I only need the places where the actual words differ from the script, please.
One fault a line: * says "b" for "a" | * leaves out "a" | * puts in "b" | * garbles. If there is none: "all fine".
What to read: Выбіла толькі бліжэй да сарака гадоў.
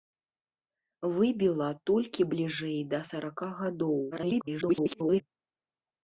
* garbles